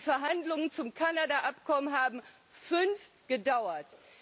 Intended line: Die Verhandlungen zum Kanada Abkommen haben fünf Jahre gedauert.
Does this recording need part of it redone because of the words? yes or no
yes